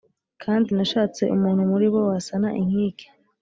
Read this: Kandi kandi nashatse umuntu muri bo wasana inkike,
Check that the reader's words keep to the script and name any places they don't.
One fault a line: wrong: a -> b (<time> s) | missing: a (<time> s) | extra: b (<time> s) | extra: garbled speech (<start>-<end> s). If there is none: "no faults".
missing: kandi (0.7 s)